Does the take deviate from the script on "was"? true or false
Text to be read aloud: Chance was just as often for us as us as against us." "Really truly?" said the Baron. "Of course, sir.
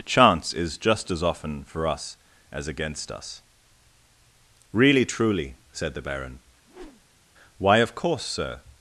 true